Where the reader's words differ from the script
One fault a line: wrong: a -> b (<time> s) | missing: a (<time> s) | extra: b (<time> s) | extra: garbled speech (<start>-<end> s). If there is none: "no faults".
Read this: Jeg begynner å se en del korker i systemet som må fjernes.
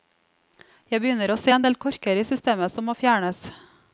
no faults